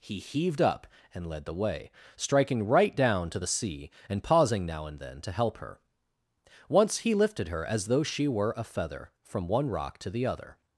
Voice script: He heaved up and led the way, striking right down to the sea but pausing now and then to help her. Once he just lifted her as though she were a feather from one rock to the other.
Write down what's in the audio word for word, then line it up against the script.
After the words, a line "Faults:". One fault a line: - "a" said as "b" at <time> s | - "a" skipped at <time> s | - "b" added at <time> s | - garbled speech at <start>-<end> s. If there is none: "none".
He heaved up and led the way, striking right down to the sea and pausing now and then to help her. Once he lifted her as though she were a feather from one rock to the other.
Faults:
- "but" said as "and" at 4.1 s
- "just" skipped at 7.1 s